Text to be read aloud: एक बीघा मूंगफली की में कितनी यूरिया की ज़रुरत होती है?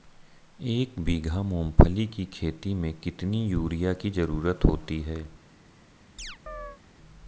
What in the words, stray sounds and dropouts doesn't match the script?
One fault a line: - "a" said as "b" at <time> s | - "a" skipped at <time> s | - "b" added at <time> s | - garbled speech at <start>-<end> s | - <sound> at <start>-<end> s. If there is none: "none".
- "खेती" added at 2.3 s
- chirp at 6.2-6.8 s